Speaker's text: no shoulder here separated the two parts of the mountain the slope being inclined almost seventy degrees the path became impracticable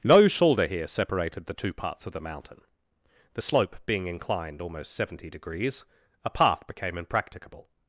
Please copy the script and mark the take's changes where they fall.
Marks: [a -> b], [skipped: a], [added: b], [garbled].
no shoulder here separated the two parts of the mountain the slope being inclined almost seventy degrees [the -> a] path became impracticable